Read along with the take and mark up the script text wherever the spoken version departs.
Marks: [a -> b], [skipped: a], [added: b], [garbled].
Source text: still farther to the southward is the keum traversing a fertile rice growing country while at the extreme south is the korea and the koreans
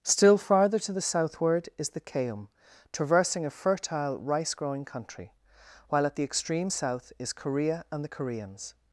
still farther to the southward is the keum traversing a fertile rice growing country while at the extreme south is [skipped: the] korea and the koreans